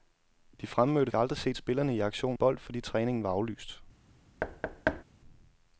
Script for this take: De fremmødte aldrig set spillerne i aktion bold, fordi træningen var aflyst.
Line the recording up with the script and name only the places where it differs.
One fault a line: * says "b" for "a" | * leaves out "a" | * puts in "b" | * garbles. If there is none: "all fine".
all fine